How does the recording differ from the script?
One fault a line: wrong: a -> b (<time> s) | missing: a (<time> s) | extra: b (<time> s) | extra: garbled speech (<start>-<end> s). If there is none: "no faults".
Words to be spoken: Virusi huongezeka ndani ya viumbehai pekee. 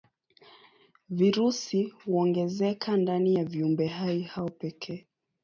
extra: hao (4.2 s)